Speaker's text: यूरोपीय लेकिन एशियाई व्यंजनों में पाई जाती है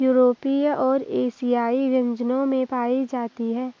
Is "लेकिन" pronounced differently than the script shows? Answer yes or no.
yes